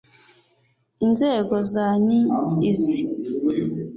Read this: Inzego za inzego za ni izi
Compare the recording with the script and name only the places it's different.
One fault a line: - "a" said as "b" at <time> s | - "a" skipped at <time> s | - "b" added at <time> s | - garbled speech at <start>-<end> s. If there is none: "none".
- "inzego za" skipped at 1.9 s